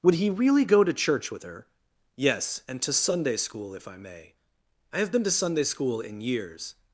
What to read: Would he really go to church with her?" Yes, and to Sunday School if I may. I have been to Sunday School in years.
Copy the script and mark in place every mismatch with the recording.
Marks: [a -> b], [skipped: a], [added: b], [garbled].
Would he really go to church with her?" Yes, and to Sunday School if I may. I have been to Sunday School in years.